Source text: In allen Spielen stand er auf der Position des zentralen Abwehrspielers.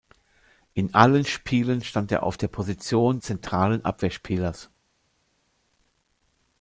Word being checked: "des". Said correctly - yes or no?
no